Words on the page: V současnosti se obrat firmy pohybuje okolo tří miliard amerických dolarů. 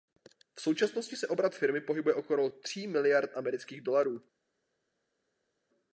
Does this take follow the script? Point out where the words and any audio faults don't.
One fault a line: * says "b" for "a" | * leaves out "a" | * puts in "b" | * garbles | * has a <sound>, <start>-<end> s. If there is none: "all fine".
all fine